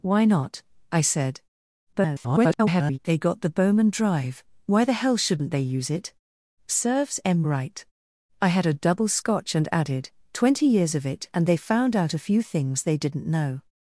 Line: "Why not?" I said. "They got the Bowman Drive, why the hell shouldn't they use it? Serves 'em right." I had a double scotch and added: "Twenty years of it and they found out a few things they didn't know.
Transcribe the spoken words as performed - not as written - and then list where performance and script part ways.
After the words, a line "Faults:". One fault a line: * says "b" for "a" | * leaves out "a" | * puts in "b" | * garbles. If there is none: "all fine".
"Why not?" I said. [garbled] "They got the Bowman Drive, why the hell shouldn't they use it? Serves 'em right." I had a double scotch and added: "Twenty years of it and they found out a few things they didn't know.
Faults:
* garbles